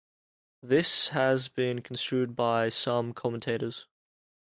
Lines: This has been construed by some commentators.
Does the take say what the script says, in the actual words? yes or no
yes